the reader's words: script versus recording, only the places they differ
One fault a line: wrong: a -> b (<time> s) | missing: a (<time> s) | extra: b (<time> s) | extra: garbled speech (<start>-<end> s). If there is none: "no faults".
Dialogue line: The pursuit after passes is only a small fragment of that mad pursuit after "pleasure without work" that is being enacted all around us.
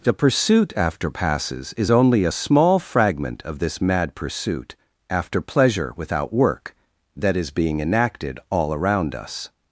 wrong: that -> this (3.6 s)